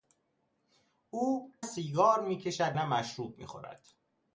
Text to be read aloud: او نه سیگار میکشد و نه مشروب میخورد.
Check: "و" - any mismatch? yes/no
yes